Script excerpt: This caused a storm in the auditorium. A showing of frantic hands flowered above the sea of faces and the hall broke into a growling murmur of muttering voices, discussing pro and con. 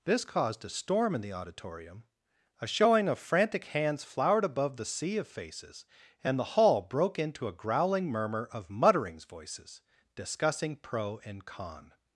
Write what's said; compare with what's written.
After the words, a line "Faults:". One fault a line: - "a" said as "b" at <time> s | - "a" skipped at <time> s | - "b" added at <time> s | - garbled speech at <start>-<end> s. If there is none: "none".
This caused a storm in the auditorium. A showing of frantic hands flowered above the sea of faces and the hall broke into a growling murmur of mutterings voices, discussing pro and con.
Faults:
- "muttering" said as "mutterings" at 8.7 s